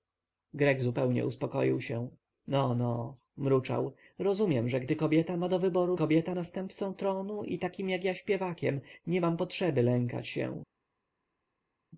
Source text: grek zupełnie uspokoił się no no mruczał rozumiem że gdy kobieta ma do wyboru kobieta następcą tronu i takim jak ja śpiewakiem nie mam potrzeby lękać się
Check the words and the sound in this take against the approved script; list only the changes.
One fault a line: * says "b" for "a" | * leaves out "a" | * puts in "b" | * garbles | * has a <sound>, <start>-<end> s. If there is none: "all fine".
all fine